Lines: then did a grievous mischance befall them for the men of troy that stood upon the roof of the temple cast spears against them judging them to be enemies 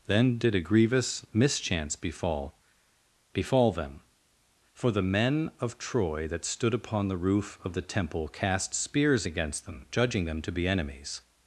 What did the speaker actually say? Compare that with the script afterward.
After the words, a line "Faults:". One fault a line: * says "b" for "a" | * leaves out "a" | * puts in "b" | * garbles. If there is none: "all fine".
then did a grievous mischance befall befall them for the men of troy that stood upon the roof of the temple cast spears against them judging them to be enemies
Faults:
* puts in "befall"